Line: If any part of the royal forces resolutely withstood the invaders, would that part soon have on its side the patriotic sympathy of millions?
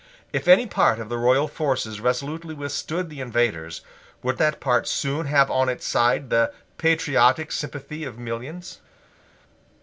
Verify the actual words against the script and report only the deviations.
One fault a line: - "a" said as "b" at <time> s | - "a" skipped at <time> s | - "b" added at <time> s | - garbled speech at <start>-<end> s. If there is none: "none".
none